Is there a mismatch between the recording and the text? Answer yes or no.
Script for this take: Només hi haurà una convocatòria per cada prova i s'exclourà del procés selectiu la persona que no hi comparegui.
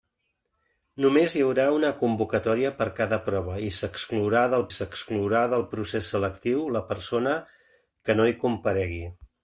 yes